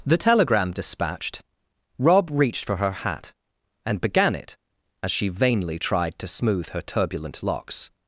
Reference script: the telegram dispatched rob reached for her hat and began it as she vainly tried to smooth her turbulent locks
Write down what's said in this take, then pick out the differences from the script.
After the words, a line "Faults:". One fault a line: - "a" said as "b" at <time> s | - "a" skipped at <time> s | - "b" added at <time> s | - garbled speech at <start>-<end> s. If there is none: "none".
the telegram dispatched rob reached for her hat and began it as she vainly tried to smooth her turbulent locks
Faults:
none